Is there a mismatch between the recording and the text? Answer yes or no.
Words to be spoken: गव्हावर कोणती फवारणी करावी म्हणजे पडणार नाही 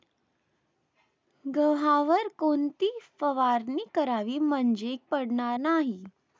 no